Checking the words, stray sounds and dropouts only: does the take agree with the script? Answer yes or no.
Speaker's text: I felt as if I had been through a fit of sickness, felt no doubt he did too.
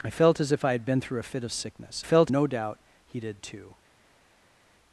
yes